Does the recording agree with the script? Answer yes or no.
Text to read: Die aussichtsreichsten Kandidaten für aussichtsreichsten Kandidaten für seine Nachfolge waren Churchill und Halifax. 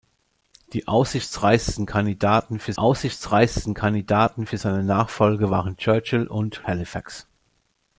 yes